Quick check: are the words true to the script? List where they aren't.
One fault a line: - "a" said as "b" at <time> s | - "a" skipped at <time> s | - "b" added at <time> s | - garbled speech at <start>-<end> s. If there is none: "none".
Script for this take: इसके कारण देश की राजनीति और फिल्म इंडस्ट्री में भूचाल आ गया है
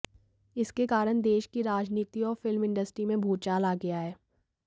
none